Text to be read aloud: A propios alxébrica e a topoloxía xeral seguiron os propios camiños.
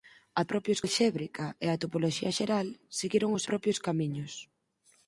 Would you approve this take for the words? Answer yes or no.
yes